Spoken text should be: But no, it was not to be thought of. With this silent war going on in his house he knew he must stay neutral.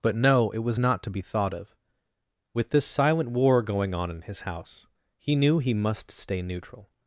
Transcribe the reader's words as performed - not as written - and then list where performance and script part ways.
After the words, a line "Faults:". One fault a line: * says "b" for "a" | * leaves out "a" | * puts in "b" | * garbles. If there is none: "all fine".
But no, it was not to be thought of. With this silent war going on in his house he knew he must stay neutral.
Faults:
all fine